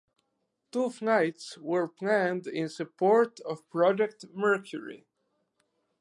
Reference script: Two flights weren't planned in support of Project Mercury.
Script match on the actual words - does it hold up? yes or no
no